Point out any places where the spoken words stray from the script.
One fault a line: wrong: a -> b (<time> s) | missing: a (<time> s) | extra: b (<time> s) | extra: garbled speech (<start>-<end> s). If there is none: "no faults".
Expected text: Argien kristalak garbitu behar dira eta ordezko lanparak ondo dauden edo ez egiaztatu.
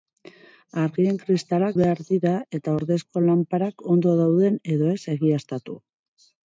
missing: garbitu (1.7 s)